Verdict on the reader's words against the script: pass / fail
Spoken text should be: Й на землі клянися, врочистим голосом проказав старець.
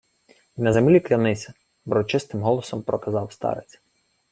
pass